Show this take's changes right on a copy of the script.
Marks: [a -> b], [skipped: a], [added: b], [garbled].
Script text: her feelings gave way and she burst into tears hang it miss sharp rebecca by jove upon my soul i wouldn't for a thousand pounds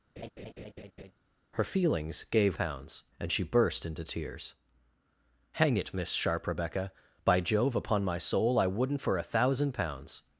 her feelings gave [way -> pounds] and she burst into tears hang it miss sharp rebecca by jove upon my soul i wouldn't for a thousand pounds